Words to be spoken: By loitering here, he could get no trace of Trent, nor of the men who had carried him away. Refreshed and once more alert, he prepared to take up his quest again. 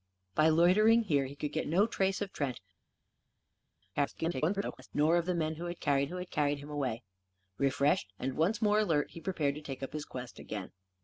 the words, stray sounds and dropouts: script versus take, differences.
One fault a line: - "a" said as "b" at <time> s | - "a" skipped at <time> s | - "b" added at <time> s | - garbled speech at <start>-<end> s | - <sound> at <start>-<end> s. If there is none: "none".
- garbled speech at 3.9-4.9 s
- "who had carried" added at 6.0 s